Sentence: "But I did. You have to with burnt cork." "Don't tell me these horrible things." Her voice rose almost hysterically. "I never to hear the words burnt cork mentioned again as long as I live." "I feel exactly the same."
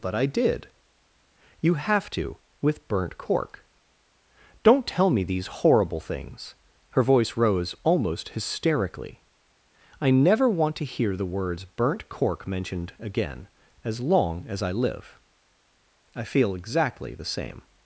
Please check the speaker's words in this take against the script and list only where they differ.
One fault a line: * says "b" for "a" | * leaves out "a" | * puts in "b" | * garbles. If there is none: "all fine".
* puts in "want"